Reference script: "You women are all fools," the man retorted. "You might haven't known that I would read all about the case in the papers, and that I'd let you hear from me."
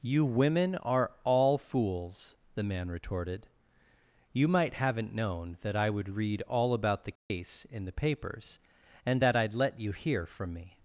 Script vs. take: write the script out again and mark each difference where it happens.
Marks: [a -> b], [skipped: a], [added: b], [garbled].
"You women are all fools," the man retorted. "You might haven't known that I would read all about the case in the papers, and that I'd let you hear from me."